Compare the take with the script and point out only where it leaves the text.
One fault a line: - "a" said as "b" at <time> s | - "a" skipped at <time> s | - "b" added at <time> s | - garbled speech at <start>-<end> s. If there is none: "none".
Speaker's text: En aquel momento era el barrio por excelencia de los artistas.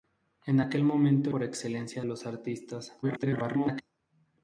- "era el barrio" skipped at 1.3 s
- "de" skipped at 2.1 s
- garbled speech at 3.0-3.8 s